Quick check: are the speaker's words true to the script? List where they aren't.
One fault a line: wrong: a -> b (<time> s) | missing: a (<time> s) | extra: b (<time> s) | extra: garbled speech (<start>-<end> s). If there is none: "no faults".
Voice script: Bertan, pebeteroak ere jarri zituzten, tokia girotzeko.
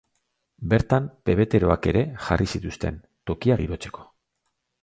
no faults